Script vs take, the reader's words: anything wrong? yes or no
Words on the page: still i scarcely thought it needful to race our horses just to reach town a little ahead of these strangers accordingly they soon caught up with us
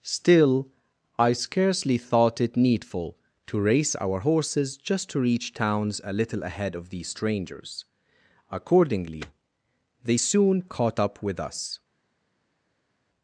yes